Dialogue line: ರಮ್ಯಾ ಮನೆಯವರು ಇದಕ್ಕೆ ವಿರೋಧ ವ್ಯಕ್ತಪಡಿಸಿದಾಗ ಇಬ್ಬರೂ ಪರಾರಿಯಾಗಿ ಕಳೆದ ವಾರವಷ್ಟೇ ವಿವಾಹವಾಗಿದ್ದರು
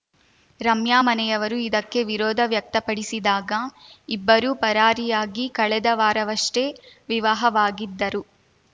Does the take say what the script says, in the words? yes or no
yes